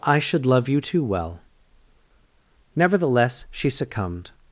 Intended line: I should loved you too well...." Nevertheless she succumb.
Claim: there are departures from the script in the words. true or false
true